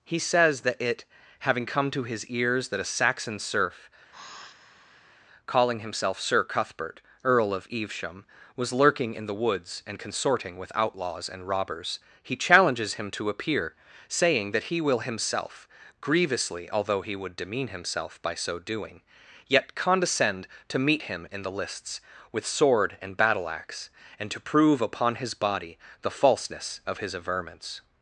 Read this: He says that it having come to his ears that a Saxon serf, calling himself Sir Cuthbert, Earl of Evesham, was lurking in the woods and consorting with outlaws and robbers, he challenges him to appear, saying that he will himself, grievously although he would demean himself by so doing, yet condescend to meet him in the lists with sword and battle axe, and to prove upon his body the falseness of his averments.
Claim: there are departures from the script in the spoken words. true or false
false